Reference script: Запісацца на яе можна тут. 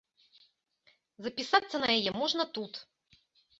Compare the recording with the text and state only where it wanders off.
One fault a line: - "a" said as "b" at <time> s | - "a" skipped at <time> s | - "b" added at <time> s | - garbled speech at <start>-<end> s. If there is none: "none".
none